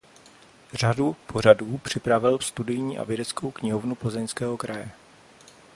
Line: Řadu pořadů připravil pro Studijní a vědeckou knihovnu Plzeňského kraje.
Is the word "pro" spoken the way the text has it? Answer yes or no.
no